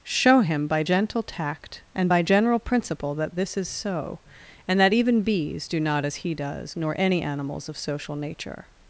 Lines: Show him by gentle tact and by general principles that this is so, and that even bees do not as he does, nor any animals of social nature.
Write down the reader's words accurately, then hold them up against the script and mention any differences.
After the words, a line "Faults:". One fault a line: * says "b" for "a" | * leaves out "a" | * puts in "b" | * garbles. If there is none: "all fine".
Show him by gentle tact and by general principle that this is so, and that even bees do not as he does, nor any animals of social nature.
Faults:
* says "principle" for "principles"